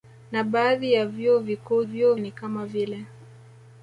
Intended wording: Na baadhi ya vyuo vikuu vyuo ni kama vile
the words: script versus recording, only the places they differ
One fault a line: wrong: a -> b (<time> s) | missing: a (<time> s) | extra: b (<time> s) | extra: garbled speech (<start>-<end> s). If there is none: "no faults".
no faults